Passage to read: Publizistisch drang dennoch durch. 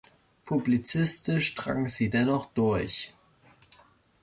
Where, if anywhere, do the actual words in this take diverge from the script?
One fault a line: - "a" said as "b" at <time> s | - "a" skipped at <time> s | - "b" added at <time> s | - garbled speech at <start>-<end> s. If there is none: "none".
- "sie" added at 1.9 s